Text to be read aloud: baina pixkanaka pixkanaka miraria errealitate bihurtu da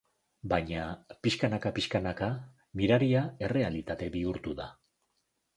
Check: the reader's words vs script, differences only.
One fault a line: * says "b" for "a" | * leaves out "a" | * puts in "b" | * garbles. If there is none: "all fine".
all fine